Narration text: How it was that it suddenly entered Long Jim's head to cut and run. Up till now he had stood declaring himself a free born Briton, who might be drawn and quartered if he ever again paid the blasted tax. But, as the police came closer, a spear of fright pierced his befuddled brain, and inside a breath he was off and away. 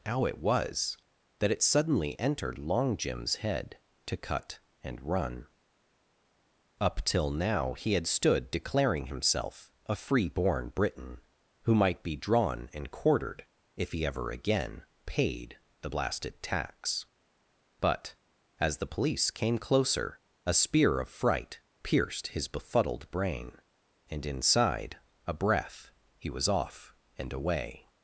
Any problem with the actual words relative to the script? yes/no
no